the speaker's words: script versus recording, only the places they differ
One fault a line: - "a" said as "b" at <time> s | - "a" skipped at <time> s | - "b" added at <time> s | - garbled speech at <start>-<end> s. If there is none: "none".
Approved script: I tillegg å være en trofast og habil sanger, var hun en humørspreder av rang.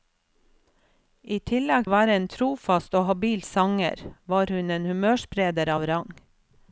none